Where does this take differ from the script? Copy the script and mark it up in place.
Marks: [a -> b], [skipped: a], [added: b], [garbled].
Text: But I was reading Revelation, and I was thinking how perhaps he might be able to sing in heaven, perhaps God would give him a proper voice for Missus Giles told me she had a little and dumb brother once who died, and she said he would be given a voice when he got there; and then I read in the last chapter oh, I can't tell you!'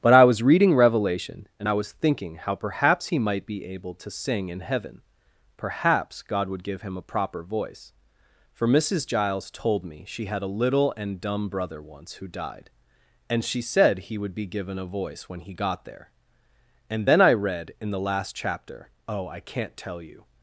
But I was reading Revelation, and I was thinking how perhaps he might be able to sing in heaven, perhaps God would give him a proper voice for Missus Giles told me she had a little and dumb brother once who died, and she said he would be given a voice when he got there; and then I read in the last chapter oh, I can't tell you!'